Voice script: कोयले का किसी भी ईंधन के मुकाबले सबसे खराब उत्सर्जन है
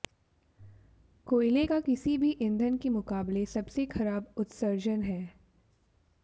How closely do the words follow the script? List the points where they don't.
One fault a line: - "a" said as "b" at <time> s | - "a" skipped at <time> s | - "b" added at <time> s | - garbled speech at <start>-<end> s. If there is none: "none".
none